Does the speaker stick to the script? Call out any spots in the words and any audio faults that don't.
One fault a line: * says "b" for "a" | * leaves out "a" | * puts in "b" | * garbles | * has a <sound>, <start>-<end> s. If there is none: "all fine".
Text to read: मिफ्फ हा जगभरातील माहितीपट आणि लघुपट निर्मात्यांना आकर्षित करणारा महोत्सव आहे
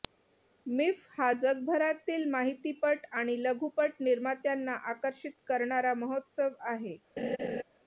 * has a laugh, 7.2-7.6 s